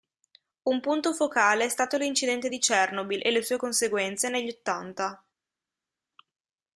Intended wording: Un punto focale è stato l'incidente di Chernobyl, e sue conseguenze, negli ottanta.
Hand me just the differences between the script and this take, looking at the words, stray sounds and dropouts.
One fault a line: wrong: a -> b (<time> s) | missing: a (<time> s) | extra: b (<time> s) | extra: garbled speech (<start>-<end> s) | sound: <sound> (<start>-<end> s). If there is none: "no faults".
extra: le (3.3 s)